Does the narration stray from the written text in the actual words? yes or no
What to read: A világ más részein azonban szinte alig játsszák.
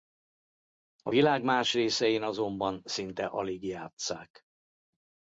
no